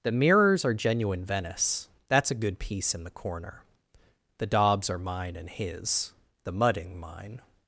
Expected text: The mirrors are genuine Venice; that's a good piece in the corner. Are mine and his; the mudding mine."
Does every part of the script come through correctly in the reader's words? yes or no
no